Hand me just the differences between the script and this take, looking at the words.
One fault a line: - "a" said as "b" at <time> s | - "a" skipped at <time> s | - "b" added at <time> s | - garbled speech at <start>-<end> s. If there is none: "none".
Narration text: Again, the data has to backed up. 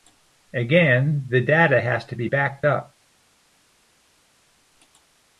- "be" added at 2.1 s